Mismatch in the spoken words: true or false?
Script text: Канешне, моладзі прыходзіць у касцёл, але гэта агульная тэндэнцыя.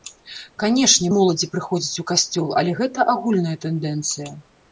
false